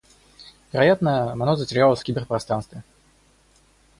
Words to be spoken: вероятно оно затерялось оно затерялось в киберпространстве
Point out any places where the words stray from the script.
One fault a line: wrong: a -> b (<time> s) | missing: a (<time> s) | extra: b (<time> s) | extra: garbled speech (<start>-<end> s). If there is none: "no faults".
missing: оно затерялось (2.0 s)